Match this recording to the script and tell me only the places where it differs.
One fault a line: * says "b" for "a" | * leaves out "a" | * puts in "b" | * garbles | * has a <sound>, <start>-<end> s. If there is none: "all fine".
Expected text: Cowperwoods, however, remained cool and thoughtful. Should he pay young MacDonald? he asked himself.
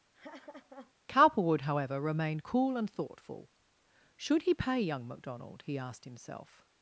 * has a laugh, 0.1-0.9 s
* says "Cowperwood" for "Cowperwoods"